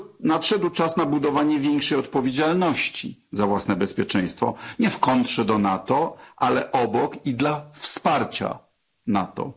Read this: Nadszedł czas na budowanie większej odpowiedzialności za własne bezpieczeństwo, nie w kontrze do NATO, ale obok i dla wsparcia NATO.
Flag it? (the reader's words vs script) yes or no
no